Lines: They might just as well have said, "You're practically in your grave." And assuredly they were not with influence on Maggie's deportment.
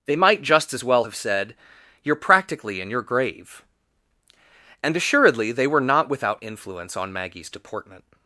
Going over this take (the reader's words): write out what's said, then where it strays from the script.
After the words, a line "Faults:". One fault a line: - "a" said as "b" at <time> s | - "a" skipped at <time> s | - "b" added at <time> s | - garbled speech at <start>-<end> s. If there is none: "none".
They might just as well have said, "You're practically in your grave." And assuredly they were not without influence on Maggie's deportment.
Faults:
- "with" said as "without" at 6.1 s